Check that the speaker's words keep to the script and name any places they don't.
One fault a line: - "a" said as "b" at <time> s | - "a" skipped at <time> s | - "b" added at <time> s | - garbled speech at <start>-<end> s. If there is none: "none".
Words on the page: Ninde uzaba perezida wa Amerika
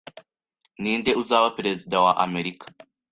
none